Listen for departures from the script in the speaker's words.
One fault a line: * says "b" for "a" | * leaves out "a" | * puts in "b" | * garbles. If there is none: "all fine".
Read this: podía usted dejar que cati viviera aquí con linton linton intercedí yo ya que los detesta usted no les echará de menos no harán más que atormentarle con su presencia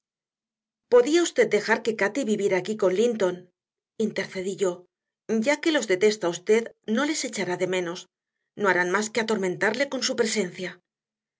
* leaves out "linton"